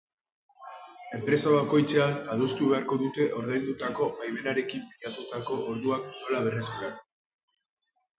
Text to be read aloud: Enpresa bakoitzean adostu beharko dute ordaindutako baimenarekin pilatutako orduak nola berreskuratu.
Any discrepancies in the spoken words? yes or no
no